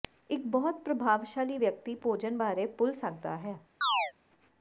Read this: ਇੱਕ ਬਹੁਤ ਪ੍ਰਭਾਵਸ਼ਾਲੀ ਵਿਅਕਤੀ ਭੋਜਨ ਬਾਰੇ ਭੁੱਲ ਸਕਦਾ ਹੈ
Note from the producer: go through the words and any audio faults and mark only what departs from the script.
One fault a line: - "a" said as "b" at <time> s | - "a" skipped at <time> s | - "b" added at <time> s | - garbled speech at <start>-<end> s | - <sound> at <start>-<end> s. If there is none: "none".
- chirp at 3.8-4.1 s